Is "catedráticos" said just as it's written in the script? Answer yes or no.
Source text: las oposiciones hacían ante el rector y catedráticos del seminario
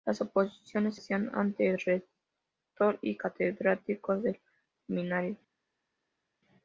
yes